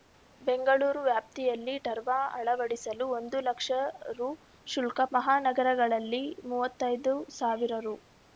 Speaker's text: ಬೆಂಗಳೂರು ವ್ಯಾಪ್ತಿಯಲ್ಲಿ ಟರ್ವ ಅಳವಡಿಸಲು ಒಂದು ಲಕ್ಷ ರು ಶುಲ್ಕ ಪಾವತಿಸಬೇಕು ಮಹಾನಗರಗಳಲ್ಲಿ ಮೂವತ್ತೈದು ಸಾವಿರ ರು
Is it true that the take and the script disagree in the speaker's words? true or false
true